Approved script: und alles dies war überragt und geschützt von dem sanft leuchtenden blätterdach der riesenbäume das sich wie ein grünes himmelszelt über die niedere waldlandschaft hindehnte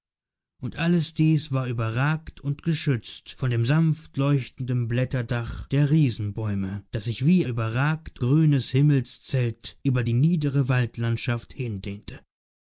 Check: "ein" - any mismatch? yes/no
yes